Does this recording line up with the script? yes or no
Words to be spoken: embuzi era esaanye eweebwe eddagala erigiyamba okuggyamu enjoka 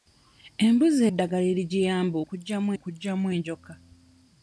no